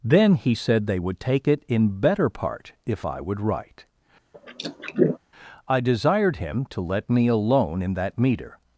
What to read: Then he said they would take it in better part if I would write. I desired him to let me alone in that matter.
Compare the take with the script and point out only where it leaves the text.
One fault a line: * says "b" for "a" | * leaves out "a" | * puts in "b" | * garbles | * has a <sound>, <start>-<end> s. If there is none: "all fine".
* has a throat clearing, 4.3-5.2 s
* says "meter" for "matter"